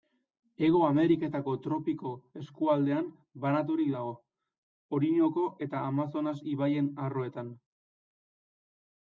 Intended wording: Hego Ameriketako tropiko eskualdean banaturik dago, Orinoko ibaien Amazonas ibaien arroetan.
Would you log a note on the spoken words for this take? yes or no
yes